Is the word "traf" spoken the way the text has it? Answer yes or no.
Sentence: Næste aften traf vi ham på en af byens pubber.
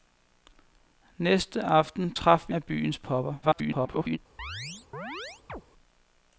yes